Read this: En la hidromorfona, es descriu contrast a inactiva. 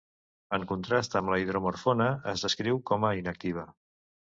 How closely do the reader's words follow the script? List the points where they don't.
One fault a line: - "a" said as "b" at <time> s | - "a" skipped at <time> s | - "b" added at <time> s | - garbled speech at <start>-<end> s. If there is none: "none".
- "contrast amb" added at 0.7 s
- "contrast" said as "com" at 2.9 s